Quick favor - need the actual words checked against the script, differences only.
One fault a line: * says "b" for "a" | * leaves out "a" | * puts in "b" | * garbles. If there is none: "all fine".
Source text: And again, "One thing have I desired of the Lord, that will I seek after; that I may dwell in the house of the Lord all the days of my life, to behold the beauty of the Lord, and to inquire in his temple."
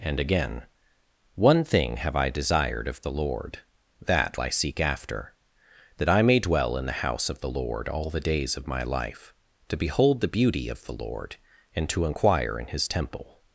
* leaves out "will"